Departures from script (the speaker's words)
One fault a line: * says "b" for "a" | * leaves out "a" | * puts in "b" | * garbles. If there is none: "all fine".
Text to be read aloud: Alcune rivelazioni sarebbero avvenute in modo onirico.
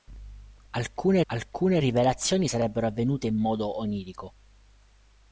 * puts in "alcune"